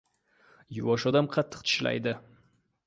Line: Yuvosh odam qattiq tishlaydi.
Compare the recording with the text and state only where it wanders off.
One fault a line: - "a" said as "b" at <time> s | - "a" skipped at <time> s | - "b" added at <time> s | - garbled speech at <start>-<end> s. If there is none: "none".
none